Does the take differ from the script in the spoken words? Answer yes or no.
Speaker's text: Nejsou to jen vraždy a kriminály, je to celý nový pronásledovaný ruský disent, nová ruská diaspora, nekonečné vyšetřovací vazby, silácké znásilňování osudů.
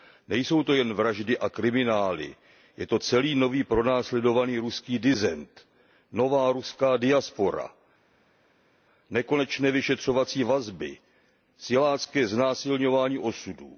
no